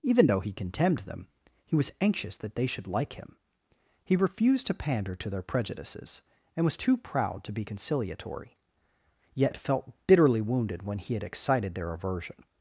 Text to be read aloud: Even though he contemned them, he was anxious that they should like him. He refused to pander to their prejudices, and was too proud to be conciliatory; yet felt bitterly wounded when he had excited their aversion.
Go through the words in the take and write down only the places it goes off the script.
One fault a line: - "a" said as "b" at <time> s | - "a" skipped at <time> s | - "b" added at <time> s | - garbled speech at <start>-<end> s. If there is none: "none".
none